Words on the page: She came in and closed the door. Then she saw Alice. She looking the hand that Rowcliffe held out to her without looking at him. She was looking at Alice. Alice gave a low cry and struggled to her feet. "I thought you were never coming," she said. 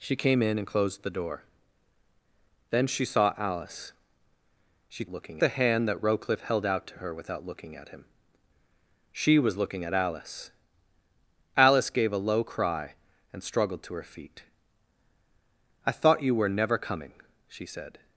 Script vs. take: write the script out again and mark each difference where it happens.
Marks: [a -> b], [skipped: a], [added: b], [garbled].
She came in and closed the door. Then she saw Alice. She looking the hand that Rowcliffe held out to her without looking at him. She was looking at Alice. Alice gave a low cry and struggled to her feet. "I thought you were never coming," she said.